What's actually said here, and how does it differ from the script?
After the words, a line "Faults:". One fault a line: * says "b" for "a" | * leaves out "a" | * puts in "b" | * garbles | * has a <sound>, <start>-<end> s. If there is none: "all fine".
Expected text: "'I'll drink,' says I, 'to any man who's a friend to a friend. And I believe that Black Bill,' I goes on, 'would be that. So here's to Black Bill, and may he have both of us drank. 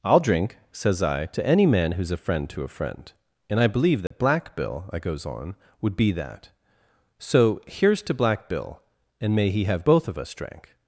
"'I'll drink,' says I, 'to any man who's a friend to a friend. And I believe that Black Bill,' I goes on, 'would be that. So here's to Black Bill, and may he have both of us drank.
Faults:
* has a dropout, 4.1-4.1 s